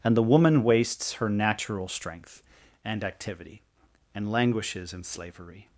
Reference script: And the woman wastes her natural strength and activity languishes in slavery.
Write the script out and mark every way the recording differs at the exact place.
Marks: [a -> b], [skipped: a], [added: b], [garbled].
And the woman wastes her natural strength and activity [added: and] languishes in slavery.